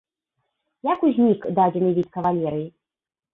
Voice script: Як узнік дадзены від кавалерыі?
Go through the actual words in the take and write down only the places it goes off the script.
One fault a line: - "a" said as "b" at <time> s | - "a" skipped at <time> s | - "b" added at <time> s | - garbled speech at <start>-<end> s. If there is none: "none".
none